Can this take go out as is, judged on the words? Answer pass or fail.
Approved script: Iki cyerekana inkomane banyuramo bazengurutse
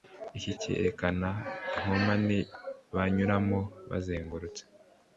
pass